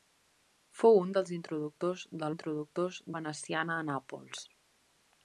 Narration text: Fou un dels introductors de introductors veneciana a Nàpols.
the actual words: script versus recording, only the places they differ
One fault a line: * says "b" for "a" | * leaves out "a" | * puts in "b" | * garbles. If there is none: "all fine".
all fine